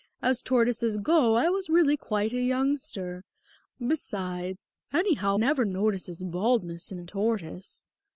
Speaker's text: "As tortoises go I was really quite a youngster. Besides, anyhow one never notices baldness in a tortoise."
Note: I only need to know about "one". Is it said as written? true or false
false